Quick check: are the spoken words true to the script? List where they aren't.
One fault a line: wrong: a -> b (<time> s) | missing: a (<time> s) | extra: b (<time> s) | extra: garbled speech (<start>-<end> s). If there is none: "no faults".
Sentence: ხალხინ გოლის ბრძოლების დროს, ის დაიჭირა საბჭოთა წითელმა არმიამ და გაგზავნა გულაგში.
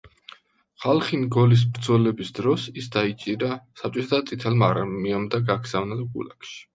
no faults